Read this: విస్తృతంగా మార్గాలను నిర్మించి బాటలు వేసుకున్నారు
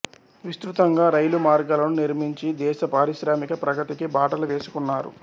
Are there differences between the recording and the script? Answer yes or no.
yes